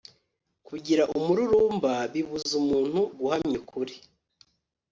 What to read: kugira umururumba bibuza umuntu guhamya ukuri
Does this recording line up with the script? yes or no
yes